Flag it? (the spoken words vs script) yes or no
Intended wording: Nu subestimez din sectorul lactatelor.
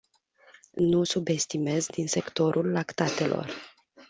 no